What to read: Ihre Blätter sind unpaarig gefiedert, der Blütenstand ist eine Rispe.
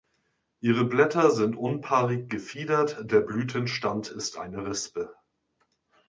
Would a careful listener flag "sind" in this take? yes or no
no